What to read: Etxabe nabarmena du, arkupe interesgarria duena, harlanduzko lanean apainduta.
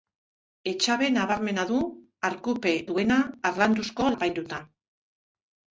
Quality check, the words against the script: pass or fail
fail